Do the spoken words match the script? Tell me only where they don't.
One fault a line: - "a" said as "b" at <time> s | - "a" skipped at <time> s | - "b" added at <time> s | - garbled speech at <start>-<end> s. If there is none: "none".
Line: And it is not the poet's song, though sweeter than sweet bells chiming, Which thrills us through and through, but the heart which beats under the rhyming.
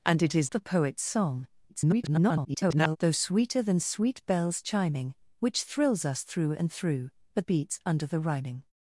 - "not" skipped at 0.5 s
- garbled speech at 1.7-3.0 s
- "the heart which" skipped at 7.4 s